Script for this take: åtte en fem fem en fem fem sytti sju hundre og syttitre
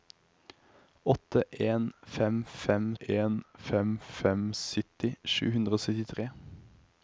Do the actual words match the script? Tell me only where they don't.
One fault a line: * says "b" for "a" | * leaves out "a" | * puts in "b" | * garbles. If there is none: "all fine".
all fine